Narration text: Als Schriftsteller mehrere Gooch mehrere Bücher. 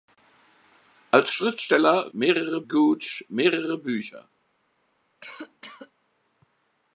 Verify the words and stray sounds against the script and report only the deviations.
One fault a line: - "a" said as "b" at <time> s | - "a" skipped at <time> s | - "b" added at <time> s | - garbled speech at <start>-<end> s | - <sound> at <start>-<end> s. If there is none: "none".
- cough at 5.2-5.9 s